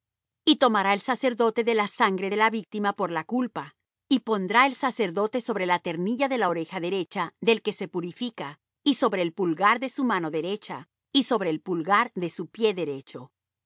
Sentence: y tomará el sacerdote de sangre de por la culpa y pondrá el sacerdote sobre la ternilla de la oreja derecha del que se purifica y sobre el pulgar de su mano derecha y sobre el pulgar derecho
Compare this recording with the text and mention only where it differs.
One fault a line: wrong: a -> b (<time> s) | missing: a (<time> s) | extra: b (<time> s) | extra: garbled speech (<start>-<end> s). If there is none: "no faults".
extra: la (1.8 s)
extra: la víctima (2.4 s)
extra: de su pie (12.2 s)